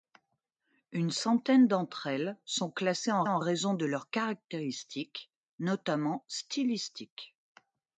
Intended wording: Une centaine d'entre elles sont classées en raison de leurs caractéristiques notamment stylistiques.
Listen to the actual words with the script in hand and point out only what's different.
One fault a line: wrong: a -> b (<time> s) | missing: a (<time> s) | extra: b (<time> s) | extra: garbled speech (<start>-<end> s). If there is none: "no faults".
extra: en (3.3 s)